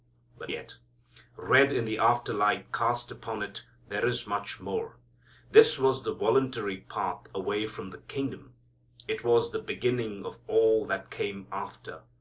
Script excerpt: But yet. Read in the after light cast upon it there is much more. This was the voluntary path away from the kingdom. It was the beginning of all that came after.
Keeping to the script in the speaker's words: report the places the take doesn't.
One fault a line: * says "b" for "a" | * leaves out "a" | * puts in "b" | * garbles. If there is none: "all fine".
all fine